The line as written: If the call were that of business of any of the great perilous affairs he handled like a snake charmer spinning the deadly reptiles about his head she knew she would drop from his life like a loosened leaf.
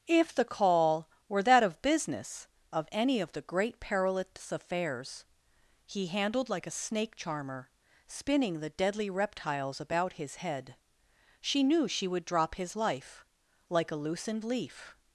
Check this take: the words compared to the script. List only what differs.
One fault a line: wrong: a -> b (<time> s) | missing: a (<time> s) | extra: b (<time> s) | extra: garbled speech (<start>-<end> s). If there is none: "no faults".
missing: from (12.5 s)